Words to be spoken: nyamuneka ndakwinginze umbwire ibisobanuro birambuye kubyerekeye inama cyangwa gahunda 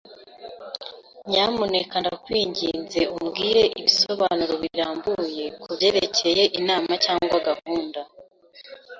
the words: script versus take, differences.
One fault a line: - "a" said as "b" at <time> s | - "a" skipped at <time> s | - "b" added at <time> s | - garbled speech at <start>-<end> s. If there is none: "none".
none